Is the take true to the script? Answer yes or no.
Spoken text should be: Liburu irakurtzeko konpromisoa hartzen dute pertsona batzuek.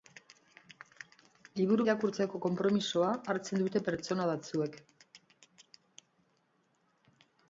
yes